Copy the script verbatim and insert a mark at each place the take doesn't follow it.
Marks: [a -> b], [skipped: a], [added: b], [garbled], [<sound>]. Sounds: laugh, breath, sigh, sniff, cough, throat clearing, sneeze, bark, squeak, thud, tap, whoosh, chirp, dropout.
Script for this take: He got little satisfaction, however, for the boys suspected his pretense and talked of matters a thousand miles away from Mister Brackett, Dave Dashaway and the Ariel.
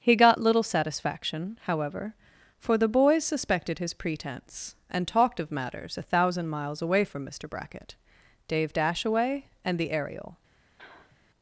He got little satisfaction, however, for the boys suspected his pretense and talked of matters a thousand miles away from Mister Brackett, Dave Dashaway and the Ariel. [sniff]